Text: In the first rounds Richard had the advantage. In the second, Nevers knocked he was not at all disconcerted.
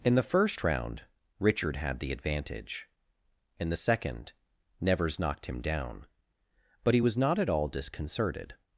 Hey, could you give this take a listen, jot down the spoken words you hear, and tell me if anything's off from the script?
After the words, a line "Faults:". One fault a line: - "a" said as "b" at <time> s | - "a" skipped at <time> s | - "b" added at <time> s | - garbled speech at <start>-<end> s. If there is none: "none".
In the first round Richard had the advantage. In the second, Nevers knocked him down; but he was not at all disconcerted.
Faults:
- "rounds" said as "round" at 0.6 s
- "him down but" added at 5.5 s